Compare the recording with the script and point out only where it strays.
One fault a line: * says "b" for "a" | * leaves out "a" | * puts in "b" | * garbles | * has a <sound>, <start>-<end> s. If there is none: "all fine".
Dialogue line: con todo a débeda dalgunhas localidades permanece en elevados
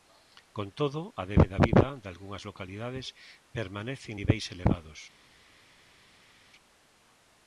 * puts in "viva"
* puts in "niveis"